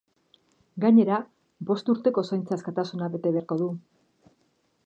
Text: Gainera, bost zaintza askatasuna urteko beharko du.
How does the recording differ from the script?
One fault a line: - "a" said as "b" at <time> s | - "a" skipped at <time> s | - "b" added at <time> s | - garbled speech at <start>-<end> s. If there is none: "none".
- "urteko" added at 1.9 s
- "urteko" said as "bete" at 3.2 s